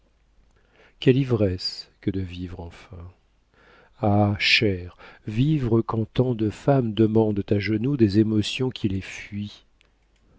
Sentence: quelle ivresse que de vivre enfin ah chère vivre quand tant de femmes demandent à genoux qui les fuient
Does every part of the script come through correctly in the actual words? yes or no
no